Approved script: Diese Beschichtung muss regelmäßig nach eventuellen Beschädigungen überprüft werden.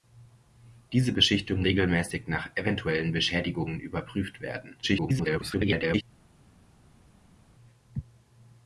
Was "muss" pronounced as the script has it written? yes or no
no